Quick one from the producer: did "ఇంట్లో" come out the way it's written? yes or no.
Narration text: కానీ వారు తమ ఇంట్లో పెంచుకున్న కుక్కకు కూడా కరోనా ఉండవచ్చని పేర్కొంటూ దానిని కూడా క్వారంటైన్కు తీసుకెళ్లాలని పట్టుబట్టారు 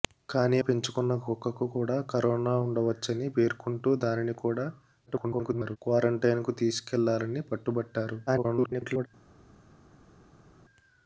no